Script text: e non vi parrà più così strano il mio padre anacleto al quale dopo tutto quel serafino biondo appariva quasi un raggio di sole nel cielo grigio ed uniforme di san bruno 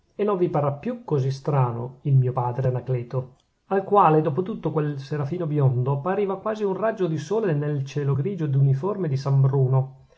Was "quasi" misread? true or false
false